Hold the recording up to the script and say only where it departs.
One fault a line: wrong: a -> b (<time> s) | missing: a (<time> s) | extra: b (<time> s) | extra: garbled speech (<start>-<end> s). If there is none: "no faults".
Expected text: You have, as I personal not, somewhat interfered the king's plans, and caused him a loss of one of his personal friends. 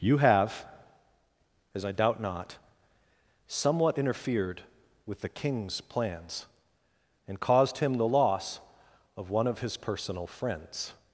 wrong: personal -> doubt (1.9 s)
extra: with (5.1 s)
wrong: a -> the (7.9 s)